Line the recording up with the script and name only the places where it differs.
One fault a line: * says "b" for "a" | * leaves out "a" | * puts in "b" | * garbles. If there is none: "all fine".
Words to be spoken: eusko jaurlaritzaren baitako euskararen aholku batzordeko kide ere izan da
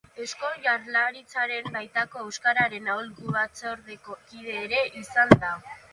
all fine